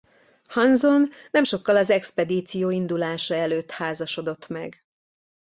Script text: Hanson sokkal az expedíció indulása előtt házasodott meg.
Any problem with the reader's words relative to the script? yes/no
yes